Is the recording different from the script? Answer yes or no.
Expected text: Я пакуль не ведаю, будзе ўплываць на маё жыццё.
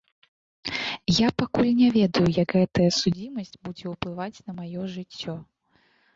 yes